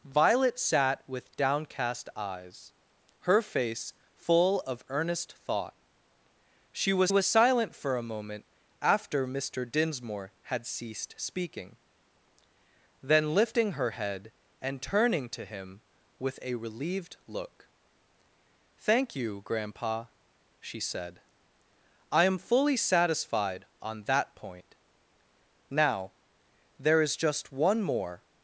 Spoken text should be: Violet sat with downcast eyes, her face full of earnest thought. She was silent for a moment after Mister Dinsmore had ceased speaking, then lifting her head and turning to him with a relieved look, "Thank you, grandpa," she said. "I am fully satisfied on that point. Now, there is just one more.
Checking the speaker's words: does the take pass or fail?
fail